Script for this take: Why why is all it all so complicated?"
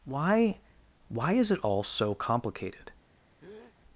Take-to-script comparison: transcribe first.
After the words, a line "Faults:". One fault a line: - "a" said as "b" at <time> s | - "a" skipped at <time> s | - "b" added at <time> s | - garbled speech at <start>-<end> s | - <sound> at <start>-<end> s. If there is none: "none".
Why why is it all so complicated?"
Faults:
- "all" skipped at 1.5 s
- breath at 3.4-3.8 s